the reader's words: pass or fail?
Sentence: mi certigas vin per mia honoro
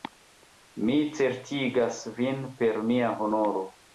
pass